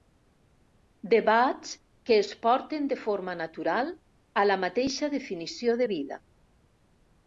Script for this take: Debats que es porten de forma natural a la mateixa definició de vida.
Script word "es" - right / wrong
right